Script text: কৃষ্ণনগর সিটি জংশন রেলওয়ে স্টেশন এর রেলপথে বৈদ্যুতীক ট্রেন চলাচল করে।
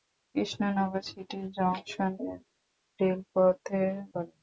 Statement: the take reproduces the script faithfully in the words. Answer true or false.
false